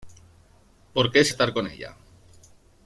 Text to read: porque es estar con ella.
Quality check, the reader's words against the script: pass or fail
pass